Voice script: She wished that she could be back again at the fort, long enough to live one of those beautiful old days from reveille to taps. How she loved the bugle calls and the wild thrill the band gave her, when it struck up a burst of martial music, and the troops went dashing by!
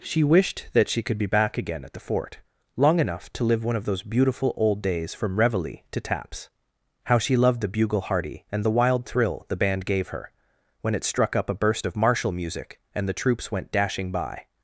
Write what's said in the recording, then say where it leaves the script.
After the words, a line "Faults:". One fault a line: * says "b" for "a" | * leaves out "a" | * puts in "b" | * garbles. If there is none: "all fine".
She wished that she could be back again at the fort, long enough to live one of those beautiful old days from reveille to taps. How she loved the bugle hearty and the wild thrill the band gave her, when it struck up a burst of martial music, and the troops went dashing by!
Faults:
* says "hearty" for "calls"